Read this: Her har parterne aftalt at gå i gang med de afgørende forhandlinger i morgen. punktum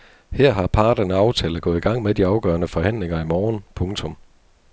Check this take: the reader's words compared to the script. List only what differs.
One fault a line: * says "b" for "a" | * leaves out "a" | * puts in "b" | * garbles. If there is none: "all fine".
all fine